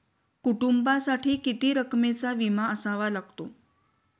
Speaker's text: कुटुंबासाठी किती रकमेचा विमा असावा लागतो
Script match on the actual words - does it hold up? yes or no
yes